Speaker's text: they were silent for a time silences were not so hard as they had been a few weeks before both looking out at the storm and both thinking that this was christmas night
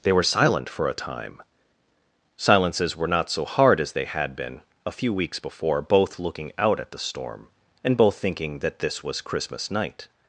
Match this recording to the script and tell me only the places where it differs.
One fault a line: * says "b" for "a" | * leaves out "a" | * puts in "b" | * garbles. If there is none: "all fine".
all fine